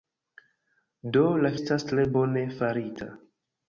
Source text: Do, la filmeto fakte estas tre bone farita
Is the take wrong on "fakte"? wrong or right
wrong